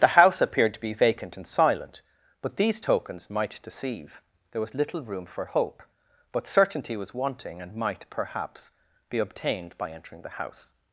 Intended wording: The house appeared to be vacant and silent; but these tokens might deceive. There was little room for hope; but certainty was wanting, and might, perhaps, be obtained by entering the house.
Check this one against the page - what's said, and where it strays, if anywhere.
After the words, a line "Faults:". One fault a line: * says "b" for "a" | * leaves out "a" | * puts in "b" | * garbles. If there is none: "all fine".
The house appeared to be vacant and silent; but these tokens might deceive. There was little room for hope; but certainty was wanting, and might, perhaps, be obtained by entering the house.
Faults:
all fine